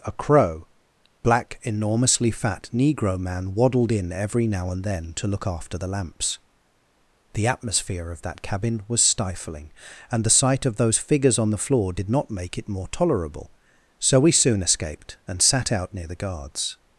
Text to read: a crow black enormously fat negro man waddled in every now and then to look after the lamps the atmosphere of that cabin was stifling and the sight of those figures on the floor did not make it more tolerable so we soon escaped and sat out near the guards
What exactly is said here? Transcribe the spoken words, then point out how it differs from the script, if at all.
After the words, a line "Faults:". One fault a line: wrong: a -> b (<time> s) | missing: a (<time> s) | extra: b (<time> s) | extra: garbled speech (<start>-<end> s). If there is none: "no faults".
a crow black enormously fat negro man waddled in every now and then to look after the lamps the atmosphere of that cabin was stifling and the sight of those figures on the floor did not make it more tolerable so we soon escaped and sat out near the guards
Faults:
no faults